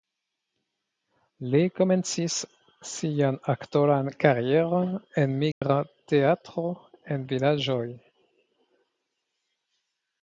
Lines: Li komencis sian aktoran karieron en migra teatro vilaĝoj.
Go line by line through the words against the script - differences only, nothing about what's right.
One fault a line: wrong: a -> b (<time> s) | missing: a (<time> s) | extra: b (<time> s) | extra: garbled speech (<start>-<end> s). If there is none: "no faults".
extra: en (7.2 s)